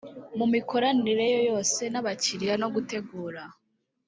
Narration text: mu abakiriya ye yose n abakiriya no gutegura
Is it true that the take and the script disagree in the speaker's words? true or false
true